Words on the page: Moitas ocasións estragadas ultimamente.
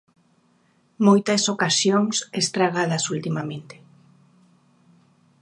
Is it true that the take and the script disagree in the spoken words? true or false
false